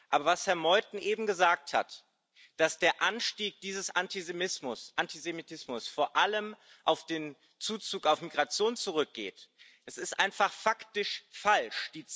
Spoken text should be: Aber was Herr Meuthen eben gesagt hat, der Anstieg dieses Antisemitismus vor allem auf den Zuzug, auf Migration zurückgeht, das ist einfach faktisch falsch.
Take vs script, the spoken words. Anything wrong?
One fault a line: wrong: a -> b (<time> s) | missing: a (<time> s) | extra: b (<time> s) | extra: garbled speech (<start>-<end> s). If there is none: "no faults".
extra: dass (2.6 s)